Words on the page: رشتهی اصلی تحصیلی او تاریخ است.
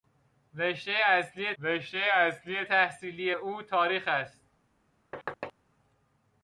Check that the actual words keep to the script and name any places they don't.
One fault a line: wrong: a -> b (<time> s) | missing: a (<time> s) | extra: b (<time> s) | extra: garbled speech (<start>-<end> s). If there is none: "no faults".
extra: رشتهی اصلی (1.6 s)